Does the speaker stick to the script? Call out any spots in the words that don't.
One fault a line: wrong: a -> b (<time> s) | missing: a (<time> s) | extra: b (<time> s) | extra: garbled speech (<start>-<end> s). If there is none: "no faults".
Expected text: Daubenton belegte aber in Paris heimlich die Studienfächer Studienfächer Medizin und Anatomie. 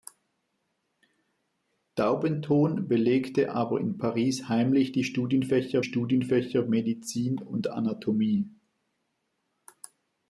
no faults